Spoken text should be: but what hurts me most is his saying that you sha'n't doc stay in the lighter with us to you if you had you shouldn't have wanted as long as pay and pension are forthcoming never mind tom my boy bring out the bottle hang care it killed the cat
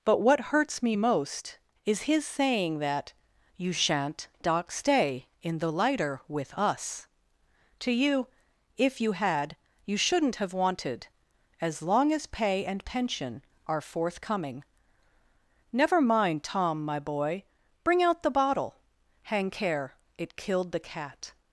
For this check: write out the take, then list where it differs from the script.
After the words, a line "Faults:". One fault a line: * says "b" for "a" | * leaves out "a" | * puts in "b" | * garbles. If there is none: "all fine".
but what hurts me most is his saying that you sha'n't doc stay in the lighter with us to you if you had you shouldn't have wanted as long as pay and pension are forthcoming never mind tom my boy bring out the bottle hang care it killed the cat
Faults:
all fine